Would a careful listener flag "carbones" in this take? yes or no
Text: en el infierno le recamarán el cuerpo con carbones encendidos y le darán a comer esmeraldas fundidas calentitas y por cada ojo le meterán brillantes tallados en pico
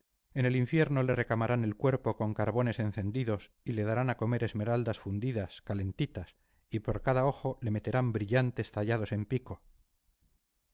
no